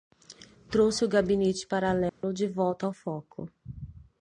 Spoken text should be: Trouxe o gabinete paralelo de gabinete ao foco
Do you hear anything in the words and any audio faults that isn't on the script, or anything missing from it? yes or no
yes